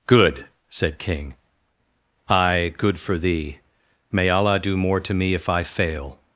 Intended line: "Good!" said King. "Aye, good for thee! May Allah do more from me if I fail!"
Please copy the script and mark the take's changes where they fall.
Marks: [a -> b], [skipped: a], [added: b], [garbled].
"Good!" said King. "Aye, good for thee! May Allah do more [from -> to] me if I fail!"